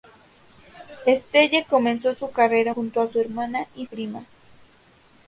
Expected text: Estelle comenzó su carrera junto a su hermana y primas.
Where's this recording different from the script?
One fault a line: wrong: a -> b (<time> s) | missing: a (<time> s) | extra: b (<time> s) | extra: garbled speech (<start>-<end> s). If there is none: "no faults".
no faults